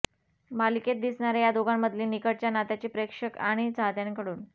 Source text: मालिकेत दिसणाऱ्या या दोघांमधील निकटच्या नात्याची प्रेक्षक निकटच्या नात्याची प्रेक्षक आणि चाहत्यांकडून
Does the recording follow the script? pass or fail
fail